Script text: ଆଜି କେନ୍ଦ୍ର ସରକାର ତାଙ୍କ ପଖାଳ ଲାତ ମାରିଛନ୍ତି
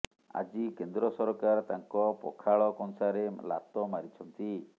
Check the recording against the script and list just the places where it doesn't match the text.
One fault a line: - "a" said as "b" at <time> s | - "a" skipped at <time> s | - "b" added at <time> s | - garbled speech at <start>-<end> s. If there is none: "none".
- "କଂସାରେ" added at 2.8 s